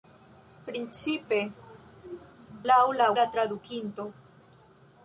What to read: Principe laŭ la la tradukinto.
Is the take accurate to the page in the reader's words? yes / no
yes